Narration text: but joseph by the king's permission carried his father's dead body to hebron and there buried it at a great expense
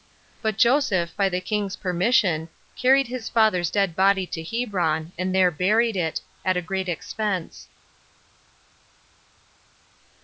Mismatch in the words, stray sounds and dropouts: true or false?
false